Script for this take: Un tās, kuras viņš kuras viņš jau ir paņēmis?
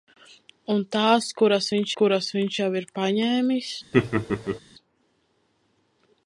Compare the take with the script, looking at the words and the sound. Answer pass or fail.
fail